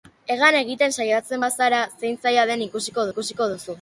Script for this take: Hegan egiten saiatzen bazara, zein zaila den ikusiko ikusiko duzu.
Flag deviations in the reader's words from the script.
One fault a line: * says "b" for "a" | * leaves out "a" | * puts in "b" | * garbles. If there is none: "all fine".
all fine